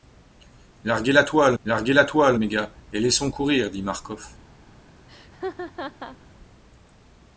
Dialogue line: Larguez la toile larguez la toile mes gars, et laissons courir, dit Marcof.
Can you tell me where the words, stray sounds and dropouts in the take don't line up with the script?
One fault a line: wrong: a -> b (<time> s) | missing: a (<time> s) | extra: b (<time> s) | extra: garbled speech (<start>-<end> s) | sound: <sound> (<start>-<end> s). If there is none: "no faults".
sound: laugh (5.1-6.2 s)